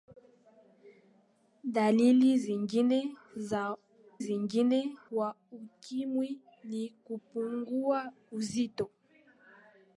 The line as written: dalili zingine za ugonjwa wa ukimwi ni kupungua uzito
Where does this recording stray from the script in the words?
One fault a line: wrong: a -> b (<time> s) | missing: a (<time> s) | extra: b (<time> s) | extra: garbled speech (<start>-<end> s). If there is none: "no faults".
wrong: ugonjwa -> zingine (4.2 s)